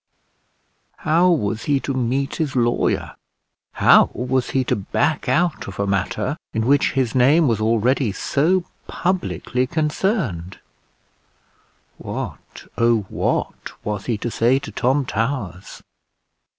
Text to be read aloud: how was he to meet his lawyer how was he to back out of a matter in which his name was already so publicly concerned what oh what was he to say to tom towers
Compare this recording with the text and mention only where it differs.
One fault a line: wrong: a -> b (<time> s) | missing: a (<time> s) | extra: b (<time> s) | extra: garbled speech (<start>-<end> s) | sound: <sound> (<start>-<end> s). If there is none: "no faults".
no faults